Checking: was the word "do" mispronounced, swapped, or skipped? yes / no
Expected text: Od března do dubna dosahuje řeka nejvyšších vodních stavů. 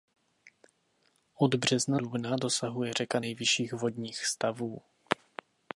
yes